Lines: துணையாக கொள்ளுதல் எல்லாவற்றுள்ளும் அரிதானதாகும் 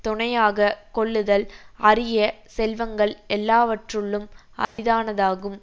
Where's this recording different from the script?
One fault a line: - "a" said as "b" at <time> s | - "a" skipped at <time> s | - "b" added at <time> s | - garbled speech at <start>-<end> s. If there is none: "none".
- "அரிய செல்வங்கள்" added at 1.8 s